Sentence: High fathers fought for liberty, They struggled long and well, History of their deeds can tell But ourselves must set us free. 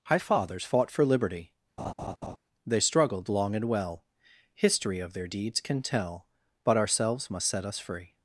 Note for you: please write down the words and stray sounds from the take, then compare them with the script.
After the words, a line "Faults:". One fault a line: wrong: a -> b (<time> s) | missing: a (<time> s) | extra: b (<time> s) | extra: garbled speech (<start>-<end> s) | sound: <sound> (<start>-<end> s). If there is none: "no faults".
High fathers fought for liberty, They struggled long and well, History of their deeds can tell But ourselves must set us free.
Faults:
sound: laugh (1.8-2.4 s)